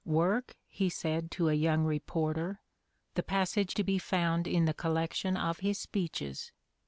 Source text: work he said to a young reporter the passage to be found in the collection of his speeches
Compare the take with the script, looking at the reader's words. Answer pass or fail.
pass